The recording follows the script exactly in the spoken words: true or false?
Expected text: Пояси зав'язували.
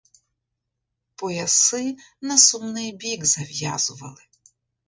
false